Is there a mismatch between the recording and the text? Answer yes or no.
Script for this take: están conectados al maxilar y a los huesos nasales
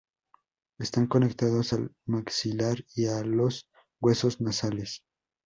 no